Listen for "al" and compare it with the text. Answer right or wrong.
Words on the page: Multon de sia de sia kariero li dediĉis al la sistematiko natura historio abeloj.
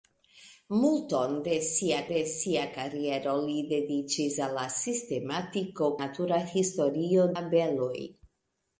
right